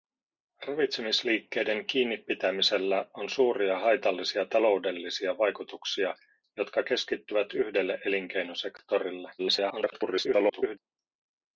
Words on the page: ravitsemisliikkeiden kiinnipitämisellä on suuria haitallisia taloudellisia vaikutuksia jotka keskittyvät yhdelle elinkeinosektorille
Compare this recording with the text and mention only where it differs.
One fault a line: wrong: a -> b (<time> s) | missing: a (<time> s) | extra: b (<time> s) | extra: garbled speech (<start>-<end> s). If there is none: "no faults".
extra: garbled speech (9.4-10.8 s)